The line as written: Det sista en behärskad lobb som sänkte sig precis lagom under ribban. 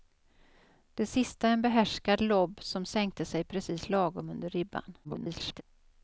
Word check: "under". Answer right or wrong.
right